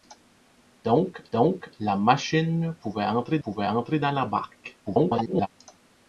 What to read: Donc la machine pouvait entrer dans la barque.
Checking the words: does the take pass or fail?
fail